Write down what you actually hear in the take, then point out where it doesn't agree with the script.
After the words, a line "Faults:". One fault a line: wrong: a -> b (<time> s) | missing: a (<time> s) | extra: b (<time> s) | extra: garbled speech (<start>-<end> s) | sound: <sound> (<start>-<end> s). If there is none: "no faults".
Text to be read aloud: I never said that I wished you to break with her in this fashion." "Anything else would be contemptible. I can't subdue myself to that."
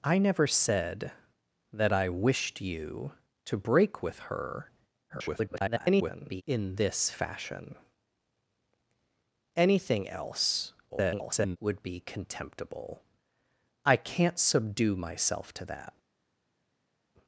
I never said that I wished you to break with her [garbled] in this fashion." "Anything else [garbled] would be contemptible. I can't subdue myself to that."
Faults:
extra: garbled speech (5.1-6.4 s)
extra: garbled speech (10.9-11.6 s)